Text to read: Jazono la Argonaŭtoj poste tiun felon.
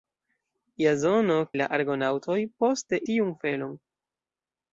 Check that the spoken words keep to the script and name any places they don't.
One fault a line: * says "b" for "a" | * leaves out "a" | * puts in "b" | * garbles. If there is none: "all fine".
all fine